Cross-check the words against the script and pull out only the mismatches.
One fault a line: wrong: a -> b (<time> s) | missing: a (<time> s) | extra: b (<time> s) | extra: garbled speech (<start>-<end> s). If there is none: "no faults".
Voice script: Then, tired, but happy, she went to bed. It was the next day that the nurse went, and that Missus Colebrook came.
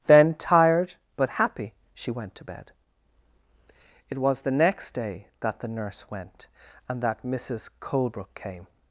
no faults